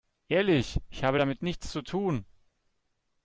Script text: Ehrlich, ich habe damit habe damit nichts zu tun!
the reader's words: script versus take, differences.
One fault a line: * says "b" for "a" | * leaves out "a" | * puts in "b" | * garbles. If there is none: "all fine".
* leaves out "habe damit"